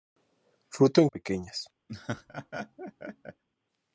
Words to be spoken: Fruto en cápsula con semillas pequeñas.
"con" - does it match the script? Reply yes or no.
no